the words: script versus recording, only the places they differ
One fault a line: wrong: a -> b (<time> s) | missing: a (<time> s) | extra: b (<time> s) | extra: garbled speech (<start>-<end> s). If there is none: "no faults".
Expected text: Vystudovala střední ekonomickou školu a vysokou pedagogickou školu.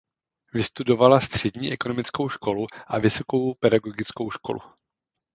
no faults